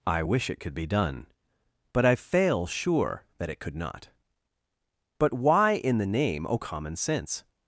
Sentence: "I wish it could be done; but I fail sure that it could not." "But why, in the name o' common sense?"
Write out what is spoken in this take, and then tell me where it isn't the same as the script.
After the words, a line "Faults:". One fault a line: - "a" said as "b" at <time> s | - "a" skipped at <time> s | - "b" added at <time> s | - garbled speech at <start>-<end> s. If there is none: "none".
"I wish it could be done; but I fail sure that it could not." "But why, in the name o' common sense?"
Faults:
none